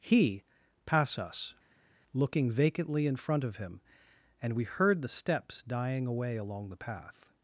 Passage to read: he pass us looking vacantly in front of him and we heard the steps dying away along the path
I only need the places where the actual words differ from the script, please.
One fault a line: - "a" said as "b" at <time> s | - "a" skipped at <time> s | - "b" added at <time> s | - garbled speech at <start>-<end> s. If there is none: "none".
none